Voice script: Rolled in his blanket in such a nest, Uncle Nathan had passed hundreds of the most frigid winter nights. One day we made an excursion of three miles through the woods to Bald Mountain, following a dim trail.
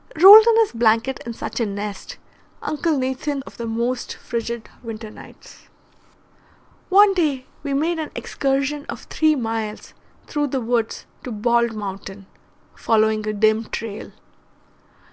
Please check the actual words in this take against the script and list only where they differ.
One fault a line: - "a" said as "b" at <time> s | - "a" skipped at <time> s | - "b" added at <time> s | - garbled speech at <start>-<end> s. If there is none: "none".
- "had passed hundreds" skipped at 3.4 s